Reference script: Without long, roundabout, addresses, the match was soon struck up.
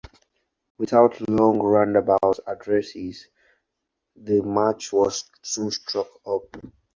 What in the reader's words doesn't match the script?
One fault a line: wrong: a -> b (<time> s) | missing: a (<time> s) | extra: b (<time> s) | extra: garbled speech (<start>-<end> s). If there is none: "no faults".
no faults